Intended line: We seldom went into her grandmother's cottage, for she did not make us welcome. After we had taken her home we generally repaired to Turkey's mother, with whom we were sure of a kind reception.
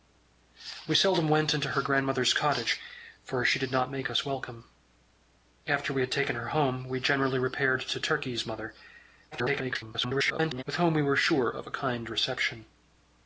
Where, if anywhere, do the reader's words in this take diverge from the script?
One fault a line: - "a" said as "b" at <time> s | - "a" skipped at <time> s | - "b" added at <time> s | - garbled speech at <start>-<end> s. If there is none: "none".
- garbled speech at 9.3-10.6 s